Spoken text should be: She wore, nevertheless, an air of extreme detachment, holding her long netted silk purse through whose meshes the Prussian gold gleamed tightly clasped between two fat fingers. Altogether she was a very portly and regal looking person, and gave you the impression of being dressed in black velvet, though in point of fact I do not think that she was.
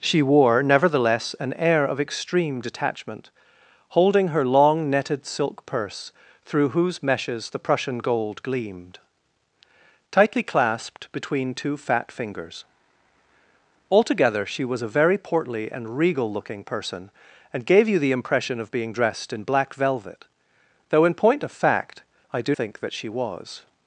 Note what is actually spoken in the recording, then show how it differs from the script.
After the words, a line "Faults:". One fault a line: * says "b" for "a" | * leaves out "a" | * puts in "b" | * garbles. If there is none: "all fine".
She wore, nevertheless, an air of extreme detachment, holding her long netted silk purse through whose meshes the Prussian gold gleamed tightly clasped between two fat fingers. Altogether she was a very portly and regal looking person, and gave you the impression of being dressed in black velvet, though in point of fact I do think that she was.
Faults:
* leaves out "not"